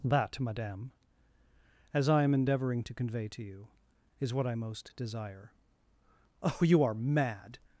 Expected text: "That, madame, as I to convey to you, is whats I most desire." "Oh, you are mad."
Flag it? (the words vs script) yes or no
yes